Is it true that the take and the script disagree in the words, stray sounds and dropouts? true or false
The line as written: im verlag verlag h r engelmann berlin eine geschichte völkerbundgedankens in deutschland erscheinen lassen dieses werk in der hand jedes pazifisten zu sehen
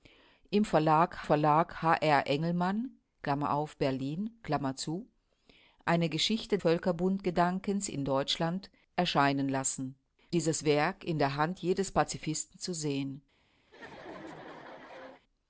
true